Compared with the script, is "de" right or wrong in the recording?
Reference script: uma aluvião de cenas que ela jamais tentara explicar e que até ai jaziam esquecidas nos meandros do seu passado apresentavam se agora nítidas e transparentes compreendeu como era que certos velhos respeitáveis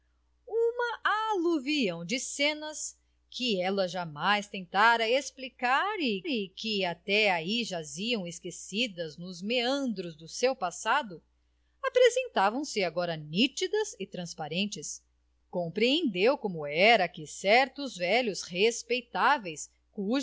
right